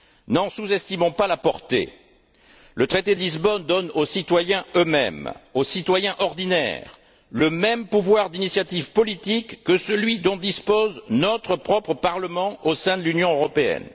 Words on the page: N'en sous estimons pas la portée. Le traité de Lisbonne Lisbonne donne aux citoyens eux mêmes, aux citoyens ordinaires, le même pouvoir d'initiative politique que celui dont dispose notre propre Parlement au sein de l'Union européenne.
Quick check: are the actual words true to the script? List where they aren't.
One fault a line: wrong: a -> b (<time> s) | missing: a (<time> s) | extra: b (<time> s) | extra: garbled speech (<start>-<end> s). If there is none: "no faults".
missing: Lisbonne (3.6 s)